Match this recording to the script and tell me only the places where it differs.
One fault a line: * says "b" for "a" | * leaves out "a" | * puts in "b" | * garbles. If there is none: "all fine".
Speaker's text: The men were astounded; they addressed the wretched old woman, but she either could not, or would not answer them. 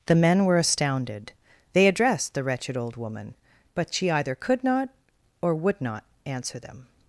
all fine